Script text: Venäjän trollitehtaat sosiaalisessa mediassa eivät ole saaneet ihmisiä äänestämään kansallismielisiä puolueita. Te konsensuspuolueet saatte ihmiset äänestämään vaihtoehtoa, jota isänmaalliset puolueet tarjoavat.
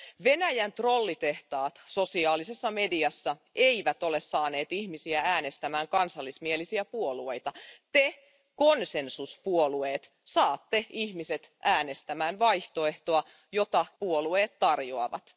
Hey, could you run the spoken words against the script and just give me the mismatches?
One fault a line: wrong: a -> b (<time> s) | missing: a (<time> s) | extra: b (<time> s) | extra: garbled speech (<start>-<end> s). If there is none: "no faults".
missing: isänmaalliset (13.8 s)